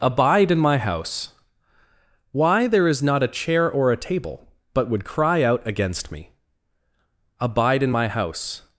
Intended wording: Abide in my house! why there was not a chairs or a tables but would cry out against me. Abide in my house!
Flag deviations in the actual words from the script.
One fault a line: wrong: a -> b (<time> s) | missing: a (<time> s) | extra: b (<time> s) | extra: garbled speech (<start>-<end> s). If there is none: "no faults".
wrong: was -> is (2.9 s)
wrong: chairs -> chair (3.3 s)
wrong: tables -> table (4.0 s)